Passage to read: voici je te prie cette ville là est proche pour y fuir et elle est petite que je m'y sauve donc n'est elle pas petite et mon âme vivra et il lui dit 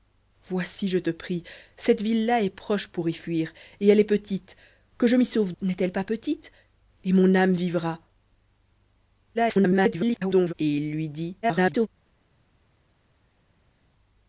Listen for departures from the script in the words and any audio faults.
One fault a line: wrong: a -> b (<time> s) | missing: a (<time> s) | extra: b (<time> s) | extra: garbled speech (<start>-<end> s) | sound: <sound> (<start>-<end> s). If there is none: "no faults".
missing: donc (5.5 s)
extra: garbled speech (9.3-10.5 s)
extra: garbled speech (11.4-11.9 s)